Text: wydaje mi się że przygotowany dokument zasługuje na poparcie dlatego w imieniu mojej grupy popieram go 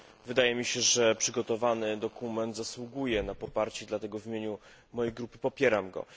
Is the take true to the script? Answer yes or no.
yes